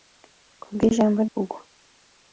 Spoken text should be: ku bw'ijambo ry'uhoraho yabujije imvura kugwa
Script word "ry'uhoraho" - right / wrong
wrong